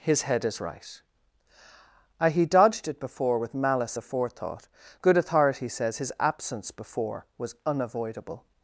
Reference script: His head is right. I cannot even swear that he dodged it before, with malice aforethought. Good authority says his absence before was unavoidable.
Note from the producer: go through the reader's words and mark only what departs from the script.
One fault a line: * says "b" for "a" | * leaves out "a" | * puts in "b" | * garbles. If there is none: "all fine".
* leaves out "cannot even swear that"